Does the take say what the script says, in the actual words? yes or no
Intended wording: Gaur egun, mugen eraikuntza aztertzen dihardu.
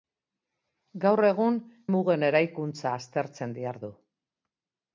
yes